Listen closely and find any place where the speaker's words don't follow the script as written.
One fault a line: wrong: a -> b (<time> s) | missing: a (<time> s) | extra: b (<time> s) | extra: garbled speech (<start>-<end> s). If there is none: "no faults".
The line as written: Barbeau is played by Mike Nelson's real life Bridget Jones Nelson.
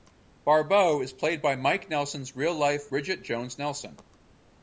no faults